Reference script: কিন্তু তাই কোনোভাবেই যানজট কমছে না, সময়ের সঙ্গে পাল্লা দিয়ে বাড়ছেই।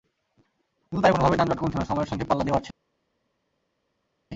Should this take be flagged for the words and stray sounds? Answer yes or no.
no